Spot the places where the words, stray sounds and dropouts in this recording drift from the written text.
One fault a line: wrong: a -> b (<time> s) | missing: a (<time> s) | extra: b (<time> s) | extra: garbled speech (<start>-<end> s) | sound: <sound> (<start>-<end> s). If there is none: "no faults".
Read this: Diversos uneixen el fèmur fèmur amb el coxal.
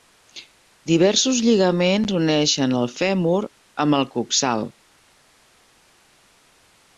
extra: lligaments (1.5 s)
missing: fèmur (3.4 s)